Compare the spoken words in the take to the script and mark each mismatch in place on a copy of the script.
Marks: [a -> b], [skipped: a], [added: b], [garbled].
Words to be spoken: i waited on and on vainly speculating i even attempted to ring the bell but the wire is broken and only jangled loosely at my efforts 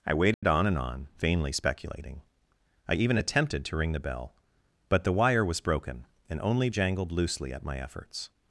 i waited on and on vainly speculating i even attempted to ring the bell but the wire [is -> was] broken and only jangled loosely at my efforts